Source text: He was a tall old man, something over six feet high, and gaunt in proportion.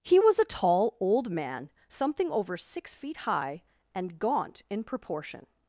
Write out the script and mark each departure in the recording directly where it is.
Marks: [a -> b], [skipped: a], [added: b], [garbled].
He was a tall old man, something over six feet high, and gaunt in proportion.